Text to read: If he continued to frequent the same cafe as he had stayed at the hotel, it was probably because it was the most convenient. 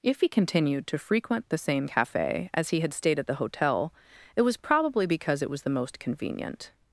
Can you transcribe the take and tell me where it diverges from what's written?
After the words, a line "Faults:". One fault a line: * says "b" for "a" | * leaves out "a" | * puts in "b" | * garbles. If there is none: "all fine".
If he continued to frequent the same cafe as he had stayed at the hotel, it was probably because it was the most convenient.
Faults:
all fine